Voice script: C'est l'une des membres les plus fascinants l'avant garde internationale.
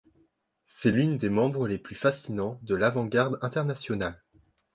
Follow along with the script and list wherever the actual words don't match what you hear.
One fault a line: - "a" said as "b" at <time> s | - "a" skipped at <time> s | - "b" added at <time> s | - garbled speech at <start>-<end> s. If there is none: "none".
- "de" added at 2.6 s